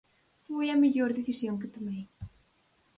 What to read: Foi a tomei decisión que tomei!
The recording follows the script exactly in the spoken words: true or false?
false